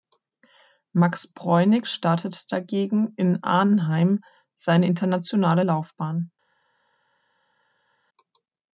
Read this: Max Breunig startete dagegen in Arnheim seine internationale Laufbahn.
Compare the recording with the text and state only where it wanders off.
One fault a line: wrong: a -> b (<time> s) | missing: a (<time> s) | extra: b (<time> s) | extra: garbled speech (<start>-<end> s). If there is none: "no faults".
no faults